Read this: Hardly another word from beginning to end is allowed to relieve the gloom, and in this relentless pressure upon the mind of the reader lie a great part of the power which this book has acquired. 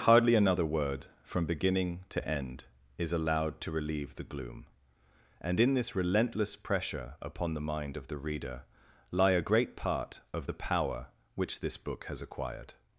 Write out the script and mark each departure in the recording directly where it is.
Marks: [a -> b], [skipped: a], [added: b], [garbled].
Hardly another word from beginning to end is allowed to relieve the gloom, and in this relentless pressure upon the mind of the reader lie a great part of the power which this book has acquired.